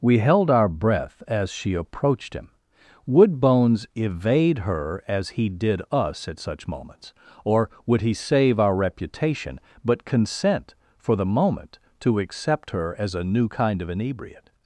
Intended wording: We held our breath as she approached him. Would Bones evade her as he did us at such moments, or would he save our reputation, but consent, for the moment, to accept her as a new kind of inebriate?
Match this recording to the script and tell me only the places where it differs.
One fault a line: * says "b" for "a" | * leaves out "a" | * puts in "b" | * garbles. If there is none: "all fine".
all fine